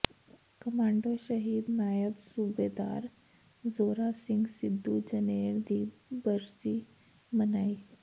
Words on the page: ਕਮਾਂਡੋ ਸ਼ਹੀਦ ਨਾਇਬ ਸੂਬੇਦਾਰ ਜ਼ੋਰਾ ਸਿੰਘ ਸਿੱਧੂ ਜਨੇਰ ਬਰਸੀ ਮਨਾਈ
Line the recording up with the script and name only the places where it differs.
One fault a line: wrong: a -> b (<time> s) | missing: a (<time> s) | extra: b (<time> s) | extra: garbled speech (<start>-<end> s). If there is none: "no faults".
extra: ਦੀ (5.7 s)